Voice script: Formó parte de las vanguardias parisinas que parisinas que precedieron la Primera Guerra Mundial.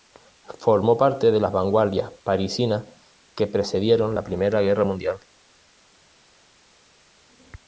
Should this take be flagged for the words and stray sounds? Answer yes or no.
yes